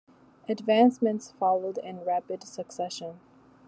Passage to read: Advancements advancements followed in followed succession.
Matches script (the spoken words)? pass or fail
fail